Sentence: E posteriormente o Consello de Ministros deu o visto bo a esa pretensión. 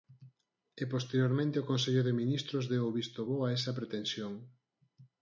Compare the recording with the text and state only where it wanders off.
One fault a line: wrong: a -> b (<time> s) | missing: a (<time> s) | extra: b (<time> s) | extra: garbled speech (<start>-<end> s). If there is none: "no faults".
no faults